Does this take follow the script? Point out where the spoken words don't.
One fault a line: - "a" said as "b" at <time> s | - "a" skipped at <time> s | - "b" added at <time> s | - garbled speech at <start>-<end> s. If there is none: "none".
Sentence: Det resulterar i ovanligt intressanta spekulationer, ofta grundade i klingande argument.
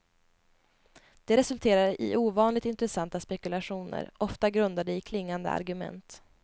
none